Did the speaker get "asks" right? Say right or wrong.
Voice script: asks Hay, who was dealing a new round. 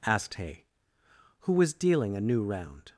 wrong